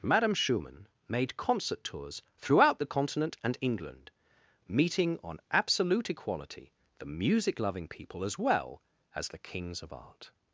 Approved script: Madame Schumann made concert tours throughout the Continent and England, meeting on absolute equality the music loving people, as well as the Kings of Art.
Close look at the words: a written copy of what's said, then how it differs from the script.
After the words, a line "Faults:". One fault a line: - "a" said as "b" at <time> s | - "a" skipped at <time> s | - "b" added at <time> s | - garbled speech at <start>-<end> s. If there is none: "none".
Madame Schumann made concert tours throughout the Continent and England, meeting on absolute equality the music loving people, as well as the Kings of Art.
Faults:
none